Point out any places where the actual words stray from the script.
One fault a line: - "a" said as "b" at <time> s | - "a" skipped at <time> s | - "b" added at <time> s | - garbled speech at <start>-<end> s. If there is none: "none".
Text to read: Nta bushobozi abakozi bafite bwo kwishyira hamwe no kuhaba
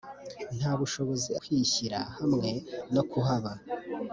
- "abakozi bafite bwo" skipped at 1.3 s